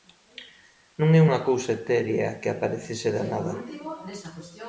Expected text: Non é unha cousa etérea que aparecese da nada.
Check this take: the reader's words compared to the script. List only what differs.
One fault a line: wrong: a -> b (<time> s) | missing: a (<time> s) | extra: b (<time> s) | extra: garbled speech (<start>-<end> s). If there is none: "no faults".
no faults